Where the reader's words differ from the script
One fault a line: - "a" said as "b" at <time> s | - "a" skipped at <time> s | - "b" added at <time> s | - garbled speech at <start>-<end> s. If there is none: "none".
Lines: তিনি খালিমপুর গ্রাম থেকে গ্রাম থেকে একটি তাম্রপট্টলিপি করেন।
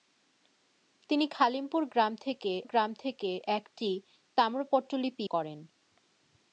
none